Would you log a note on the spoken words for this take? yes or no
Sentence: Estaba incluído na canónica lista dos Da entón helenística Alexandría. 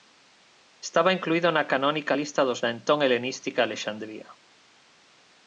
no